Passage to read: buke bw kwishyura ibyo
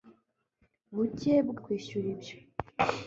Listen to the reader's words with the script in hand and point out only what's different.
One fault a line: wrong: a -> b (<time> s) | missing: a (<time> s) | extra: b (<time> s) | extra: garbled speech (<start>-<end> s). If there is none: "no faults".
no faults